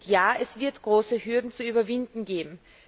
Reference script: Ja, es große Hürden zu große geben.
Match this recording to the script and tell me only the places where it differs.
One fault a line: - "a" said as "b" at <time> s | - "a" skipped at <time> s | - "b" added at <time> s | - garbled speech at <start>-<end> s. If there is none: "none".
- "wird" added at 0.6 s
- "große" said as "überwinden" at 1.6 s